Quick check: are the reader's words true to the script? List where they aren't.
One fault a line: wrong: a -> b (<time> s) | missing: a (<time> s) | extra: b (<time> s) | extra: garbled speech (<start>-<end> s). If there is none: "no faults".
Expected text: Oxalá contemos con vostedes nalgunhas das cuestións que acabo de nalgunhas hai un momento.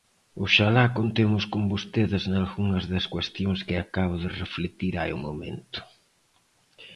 wrong: nalgunhas -> reflectir (4.4 s)